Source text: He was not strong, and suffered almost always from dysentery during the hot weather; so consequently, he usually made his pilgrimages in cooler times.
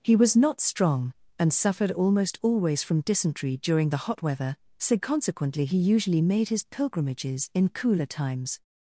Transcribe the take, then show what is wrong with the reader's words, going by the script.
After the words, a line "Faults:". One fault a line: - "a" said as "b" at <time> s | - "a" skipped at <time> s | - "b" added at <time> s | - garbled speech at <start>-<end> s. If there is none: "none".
He was not strong, and suffered almost always from dysentery during the hot weather; so consequently, he usually made his pilgrimages in cooler times.
Faults:
none